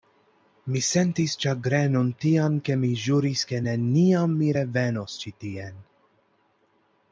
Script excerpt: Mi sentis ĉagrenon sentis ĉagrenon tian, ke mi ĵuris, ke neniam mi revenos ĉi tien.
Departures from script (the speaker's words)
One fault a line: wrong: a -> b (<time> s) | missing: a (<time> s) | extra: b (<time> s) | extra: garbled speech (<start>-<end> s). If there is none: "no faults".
missing: sentis ĉagrenon (2.1 s)